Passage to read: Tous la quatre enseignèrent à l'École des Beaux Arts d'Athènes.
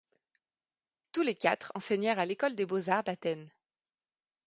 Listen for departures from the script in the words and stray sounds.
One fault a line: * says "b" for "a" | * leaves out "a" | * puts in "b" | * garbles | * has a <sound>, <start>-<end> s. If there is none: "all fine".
* says "les" for "la"